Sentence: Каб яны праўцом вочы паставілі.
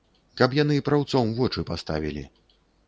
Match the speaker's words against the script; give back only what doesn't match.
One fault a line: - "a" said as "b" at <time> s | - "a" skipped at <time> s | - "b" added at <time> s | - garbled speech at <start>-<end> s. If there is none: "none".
none